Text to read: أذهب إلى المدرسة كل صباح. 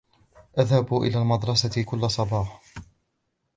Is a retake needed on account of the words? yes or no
no